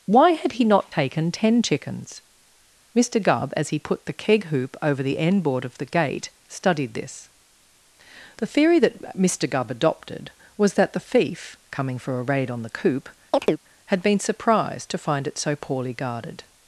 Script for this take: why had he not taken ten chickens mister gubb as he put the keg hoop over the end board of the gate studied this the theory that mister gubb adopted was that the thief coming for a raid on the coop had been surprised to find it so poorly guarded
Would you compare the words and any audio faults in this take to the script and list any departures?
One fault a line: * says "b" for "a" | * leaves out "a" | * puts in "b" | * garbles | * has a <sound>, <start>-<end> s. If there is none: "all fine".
* has a chirp, 13.3-13.6 s